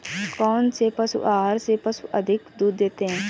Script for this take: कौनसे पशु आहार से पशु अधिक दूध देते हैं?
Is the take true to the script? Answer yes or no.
yes